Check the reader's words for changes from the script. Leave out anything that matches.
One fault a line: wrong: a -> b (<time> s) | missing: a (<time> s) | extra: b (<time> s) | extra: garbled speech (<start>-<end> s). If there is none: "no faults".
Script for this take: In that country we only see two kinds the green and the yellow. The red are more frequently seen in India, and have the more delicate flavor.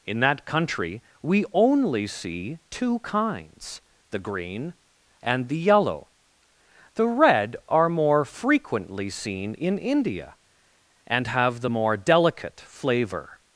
no faults